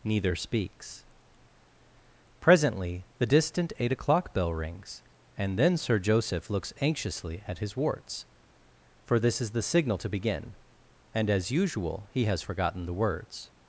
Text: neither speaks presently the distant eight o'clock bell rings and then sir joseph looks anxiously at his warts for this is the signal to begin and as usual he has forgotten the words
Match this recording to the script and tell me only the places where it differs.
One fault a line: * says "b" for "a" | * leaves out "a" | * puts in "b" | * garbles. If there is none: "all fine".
all fine